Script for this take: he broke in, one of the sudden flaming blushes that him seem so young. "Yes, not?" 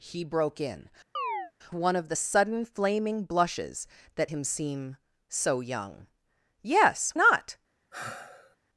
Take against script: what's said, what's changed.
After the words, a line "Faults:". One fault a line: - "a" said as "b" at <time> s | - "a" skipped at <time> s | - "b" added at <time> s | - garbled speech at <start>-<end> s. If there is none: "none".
he broke in, one of the sudden flaming blushes that him seem so young. "Yes, not?"
Faults:
none